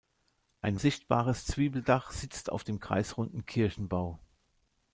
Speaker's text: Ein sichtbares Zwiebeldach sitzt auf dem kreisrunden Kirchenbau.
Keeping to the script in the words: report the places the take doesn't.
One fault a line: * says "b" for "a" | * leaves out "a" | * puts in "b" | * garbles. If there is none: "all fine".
all fine